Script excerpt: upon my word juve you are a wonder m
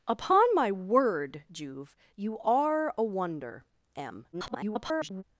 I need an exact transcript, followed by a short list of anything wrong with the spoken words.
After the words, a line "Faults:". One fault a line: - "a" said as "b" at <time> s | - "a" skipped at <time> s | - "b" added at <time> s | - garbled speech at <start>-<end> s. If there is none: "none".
upon my word juve you are a wonder m [garbled]
Faults:
- garbled speech at 4.3-5.2 s